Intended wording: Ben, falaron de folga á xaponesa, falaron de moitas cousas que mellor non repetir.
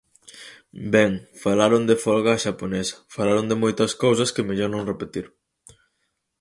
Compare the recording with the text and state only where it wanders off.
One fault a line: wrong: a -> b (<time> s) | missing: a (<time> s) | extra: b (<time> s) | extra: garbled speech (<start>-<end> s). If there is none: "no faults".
no faults